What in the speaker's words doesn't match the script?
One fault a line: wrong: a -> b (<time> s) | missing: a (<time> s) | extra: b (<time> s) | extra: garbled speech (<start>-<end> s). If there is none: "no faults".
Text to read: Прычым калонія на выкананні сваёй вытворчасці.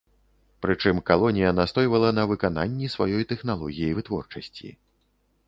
extra: настойвала (1.6 s)
extra: тэхналогіі (3.4 s)